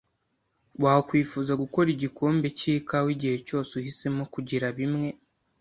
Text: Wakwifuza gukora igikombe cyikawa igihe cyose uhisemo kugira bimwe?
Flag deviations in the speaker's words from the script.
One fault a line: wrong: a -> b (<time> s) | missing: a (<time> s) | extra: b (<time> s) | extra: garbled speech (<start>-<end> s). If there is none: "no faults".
no faults